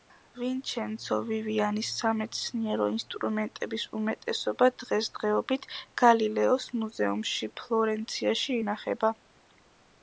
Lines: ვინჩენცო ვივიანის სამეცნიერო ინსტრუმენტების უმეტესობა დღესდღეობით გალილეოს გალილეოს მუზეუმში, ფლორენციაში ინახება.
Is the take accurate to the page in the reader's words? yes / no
no